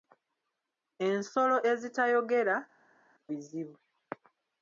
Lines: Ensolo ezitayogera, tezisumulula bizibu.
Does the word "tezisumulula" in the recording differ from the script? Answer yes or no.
yes